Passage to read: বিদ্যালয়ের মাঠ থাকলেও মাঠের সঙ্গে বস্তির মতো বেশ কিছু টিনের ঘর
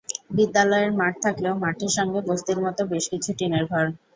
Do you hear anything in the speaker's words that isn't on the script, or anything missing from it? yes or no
no